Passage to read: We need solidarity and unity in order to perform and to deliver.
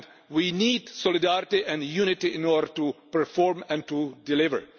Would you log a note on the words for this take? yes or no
no